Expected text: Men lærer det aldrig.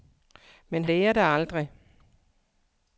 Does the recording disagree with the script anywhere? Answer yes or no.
no